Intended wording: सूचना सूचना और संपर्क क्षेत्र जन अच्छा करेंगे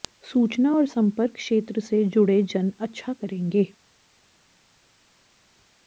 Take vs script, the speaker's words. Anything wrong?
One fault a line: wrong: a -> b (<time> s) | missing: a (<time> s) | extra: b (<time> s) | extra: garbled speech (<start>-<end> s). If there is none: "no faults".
missing: सूचना (0.7 s)
extra: से जुड़े (1.8 s)